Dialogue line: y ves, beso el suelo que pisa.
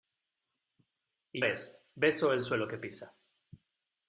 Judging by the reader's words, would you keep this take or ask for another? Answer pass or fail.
pass